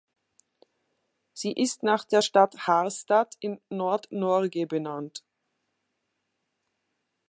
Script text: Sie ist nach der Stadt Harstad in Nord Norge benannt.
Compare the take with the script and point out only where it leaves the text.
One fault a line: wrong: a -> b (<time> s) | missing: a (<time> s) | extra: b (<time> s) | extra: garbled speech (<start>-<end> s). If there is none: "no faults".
no faults